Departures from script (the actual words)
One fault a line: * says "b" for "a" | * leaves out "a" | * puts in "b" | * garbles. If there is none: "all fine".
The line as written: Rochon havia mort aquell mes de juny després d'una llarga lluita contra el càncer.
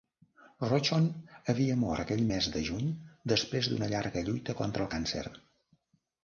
all fine